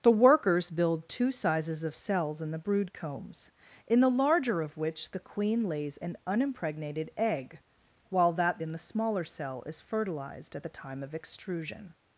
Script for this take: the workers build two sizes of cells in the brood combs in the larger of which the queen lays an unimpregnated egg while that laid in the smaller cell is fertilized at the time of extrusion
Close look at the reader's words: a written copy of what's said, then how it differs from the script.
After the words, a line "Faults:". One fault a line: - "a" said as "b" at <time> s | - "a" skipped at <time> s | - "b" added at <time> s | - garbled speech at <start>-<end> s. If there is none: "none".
the workers build two sizes of cells in the brood combs in the larger of which the queen lays an unimpregnated egg while that in the smaller cell is fertilized at the time of extrusion
Faults:
- "laid" skipped at 8.6 s